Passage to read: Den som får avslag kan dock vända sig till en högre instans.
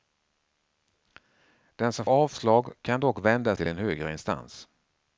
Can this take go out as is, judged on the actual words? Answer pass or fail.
fail